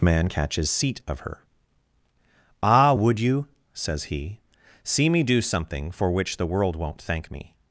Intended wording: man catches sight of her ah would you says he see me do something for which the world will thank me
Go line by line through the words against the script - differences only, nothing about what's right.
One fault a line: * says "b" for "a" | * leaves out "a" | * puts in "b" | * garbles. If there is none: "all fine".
* says "seat" for "sight"
* says "won't" for "will"